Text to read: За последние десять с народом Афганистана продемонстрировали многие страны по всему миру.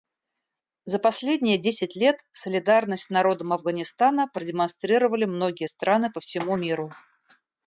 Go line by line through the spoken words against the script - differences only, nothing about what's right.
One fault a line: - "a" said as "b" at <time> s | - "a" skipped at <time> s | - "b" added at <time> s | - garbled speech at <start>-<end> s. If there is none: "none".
- "лет солидарность" added at 1.9 s